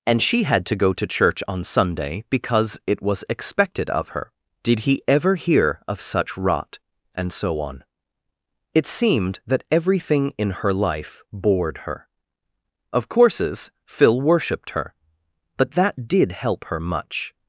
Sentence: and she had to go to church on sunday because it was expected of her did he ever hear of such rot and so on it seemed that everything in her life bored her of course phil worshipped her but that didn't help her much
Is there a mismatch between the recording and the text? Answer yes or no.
yes